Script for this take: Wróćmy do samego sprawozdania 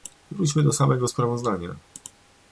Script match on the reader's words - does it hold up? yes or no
yes